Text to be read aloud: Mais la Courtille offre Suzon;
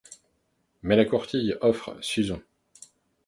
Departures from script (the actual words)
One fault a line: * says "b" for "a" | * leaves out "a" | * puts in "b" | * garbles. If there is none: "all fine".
all fine